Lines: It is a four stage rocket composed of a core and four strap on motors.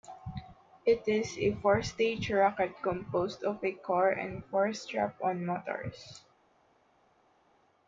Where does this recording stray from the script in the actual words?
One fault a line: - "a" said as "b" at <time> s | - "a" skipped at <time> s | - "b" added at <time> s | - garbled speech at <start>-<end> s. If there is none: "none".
none